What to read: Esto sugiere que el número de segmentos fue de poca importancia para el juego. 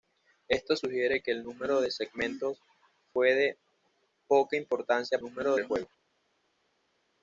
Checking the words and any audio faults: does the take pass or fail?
fail